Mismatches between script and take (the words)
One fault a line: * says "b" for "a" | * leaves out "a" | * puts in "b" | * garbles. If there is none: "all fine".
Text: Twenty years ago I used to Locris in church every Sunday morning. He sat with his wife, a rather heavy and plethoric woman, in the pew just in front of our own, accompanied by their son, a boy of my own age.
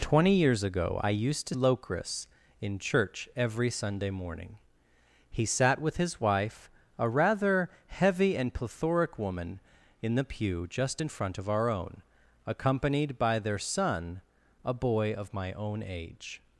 all fine